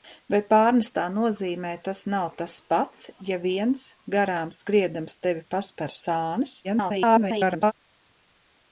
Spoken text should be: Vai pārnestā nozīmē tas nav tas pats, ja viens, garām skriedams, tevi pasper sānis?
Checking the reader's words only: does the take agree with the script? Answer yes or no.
no